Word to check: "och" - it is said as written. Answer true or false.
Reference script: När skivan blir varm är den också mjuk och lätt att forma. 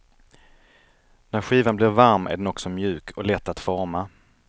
true